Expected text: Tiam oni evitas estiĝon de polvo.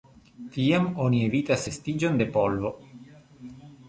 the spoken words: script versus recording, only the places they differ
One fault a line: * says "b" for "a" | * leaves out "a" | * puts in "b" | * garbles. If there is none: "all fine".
all fine